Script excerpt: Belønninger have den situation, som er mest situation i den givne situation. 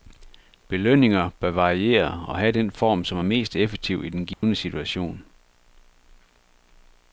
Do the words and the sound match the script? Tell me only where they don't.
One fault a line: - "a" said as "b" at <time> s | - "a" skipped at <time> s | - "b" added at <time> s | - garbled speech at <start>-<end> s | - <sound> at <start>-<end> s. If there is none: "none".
- "bør variere og" added at 1.4 s
- "situation" said as "form" at 2.7 s
- "situation" said as "effektiv" at 3.6 s
- dropout at 4.3-4.4 s